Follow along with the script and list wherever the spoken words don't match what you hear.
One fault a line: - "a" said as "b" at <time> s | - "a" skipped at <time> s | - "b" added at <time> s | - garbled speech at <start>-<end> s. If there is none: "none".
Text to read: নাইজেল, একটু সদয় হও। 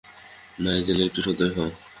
none